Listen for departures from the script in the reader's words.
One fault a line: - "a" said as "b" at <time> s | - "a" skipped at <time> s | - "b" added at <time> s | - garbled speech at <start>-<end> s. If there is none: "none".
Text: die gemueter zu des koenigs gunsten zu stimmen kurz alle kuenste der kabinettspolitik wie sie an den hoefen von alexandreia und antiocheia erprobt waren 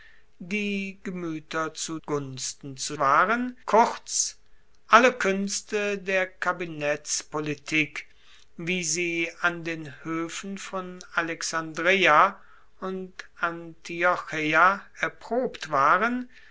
- "des koenigs" skipped at 2.0 s
- "stimmen" said as "waren" at 3.0 s